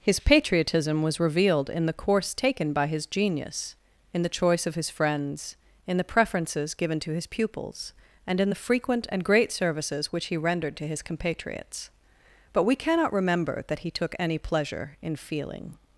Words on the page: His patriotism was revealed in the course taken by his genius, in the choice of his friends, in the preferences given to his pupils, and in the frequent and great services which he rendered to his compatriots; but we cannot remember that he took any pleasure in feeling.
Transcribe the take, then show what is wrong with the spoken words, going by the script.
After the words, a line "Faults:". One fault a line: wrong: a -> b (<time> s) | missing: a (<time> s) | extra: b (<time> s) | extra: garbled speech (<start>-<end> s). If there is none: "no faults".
His patriotism was revealed in the course taken by his genius, in the choice of his friends, in the preferences given to his pupils, and in the frequent and great services which he rendered to his compatriots; but we cannot remember that he took any pleasure in feeling.
Faults:
no faults